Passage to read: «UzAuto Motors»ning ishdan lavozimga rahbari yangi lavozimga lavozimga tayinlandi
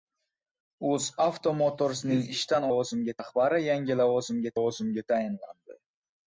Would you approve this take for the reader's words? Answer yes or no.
yes